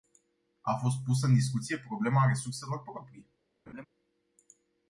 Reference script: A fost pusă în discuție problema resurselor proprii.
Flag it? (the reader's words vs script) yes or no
no